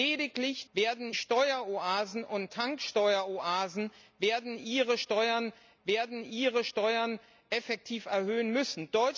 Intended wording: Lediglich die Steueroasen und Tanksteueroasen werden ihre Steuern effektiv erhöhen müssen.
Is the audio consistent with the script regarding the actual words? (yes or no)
no